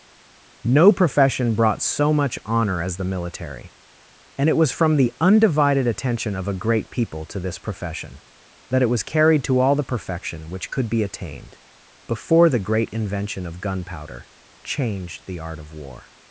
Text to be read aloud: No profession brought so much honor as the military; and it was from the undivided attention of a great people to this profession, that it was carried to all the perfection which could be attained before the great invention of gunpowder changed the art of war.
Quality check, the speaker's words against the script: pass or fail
pass